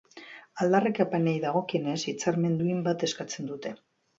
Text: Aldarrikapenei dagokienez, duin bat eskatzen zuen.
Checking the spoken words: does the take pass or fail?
fail